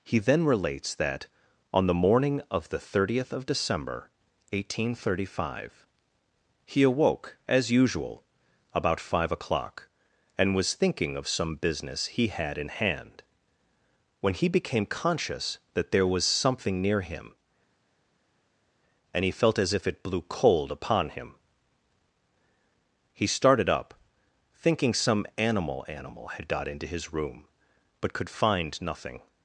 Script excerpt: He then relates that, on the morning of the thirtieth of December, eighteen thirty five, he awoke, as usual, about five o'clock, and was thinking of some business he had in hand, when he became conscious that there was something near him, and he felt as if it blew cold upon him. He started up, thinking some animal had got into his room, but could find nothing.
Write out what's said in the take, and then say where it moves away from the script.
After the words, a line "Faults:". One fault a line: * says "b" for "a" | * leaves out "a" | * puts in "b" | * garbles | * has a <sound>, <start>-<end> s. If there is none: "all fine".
He then relates that, on the morning of the thirtieth of December, eighteen thirty five, he awoke, as usual, about five o'clock, and was thinking of some business he had in hand, when he became conscious that there was something near him, and he felt as if it blew cold upon him. He started up, thinking some animal animal had got into his room, but could find nothing.
Faults:
* puts in "animal"